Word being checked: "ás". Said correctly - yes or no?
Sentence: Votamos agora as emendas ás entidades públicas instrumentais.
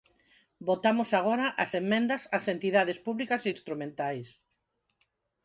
yes